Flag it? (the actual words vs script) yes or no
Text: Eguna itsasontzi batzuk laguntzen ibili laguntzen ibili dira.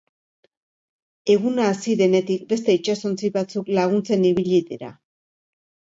yes